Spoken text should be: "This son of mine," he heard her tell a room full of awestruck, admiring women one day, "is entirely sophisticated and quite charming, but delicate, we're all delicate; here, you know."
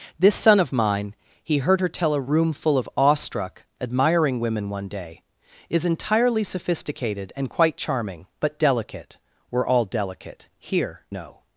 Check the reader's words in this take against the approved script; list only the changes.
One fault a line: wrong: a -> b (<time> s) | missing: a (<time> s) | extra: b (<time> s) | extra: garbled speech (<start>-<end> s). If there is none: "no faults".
missing: you (11.0 s)